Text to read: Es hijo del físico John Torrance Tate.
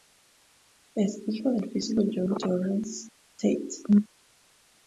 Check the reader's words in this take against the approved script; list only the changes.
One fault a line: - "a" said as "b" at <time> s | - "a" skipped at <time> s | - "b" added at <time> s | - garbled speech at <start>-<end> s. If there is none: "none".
none